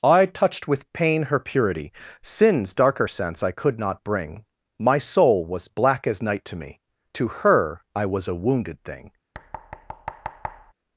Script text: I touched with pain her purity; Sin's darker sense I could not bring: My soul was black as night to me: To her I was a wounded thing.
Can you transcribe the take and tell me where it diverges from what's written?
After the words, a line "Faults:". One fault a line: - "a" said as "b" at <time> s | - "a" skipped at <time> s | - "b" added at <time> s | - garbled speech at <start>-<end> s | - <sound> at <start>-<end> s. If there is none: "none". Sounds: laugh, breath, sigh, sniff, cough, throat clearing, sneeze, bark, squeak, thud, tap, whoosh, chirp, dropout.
I touched with pain her purity; Sin's darker sense I could not bring: My soul was black as night to me: To her I was a wounded thing.
Faults:
- thud at 9.3-10.7 s